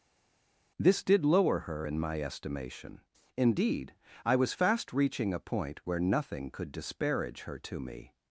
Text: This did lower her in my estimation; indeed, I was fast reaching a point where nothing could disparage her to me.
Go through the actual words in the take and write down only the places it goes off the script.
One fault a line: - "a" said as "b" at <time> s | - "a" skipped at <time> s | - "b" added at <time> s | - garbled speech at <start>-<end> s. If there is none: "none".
none